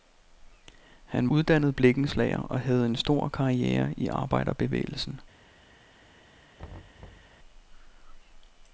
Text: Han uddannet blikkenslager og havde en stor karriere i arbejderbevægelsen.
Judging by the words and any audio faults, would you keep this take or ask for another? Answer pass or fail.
fail